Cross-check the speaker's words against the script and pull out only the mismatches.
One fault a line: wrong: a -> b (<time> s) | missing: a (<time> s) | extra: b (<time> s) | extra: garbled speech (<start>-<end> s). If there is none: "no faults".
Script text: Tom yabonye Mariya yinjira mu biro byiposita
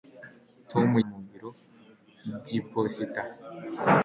missing: yabonye Mariya yinjira (0.9 s)